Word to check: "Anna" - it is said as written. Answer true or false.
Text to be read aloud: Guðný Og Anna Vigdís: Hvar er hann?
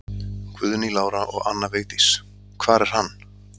true